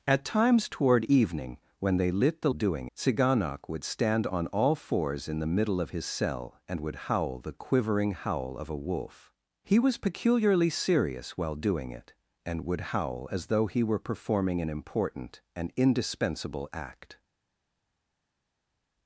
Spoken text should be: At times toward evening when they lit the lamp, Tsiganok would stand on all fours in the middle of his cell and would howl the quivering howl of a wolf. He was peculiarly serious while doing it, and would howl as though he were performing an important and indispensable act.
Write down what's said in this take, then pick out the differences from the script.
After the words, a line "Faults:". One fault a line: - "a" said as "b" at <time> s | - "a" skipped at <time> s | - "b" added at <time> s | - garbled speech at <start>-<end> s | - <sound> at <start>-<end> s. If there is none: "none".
At times toward evening when they lit the doing, Tsiganok would stand on all fours in the middle of his cell and would howl the quivering howl of a wolf. He was peculiarly serious while doing it, and would howl as though he were performing an important and indispensable act.
Faults:
- "lamp" said as "doing" at 2.5 s